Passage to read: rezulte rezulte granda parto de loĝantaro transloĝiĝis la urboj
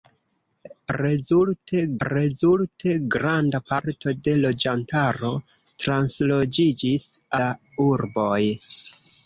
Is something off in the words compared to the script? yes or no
no